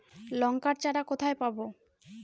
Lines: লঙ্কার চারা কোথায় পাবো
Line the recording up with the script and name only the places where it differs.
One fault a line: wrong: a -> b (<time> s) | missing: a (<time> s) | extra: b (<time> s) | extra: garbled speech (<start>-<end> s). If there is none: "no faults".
no faults